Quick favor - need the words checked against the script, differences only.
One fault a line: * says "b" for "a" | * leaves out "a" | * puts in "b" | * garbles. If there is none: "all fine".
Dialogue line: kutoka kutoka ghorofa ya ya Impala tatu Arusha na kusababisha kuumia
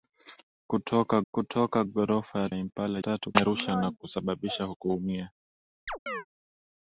all fine